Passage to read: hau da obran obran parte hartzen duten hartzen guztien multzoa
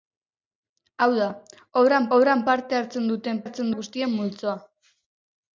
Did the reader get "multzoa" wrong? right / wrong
right